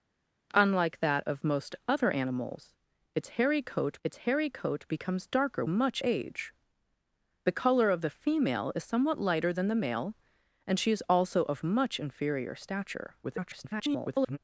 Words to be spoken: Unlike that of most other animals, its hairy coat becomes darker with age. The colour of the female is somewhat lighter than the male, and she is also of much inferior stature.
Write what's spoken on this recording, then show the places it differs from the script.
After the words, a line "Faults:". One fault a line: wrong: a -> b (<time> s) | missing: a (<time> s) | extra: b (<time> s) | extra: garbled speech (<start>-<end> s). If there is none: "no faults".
Unlike that of most other animals, its hairy coat its hairy coat becomes darker much age. The colour of the female is somewhat lighter than the male, and she is also of much inferior stature. [garbled]
Faults:
extra: its hairy coat (4.0 s)
wrong: with -> much (5.7 s)
extra: garbled speech (13.2-14.4 s)